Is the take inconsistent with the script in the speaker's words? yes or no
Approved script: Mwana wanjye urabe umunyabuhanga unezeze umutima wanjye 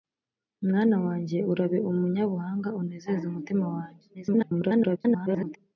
yes